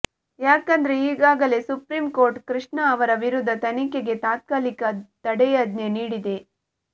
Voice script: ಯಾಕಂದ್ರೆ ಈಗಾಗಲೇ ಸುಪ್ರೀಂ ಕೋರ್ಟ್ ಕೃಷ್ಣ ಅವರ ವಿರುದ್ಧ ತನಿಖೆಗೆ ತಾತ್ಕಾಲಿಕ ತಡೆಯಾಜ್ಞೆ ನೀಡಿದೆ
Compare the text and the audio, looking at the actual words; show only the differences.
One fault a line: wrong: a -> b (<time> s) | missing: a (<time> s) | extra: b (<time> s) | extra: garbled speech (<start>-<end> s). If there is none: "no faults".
no faults